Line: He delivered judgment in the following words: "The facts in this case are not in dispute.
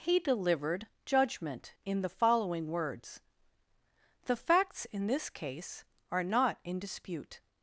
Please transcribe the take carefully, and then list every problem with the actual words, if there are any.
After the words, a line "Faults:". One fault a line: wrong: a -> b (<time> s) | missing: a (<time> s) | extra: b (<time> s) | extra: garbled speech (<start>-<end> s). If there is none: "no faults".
He delivered judgment in the following words: "The facts in this case are not in dispute.
Faults:
no faults